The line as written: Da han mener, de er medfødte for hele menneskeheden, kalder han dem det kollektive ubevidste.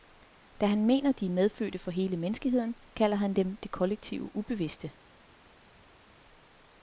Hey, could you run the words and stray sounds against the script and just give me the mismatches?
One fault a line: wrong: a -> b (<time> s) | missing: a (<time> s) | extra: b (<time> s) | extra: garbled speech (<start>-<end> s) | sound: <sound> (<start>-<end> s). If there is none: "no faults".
no faults